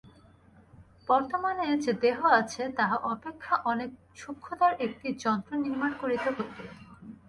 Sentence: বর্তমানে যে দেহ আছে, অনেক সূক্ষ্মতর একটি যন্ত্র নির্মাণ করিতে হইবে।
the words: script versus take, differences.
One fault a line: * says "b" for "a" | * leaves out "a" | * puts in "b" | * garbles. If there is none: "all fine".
* puts in "তাহা অপেক্ষা"